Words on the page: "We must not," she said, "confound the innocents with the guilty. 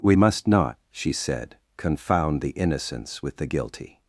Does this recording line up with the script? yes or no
yes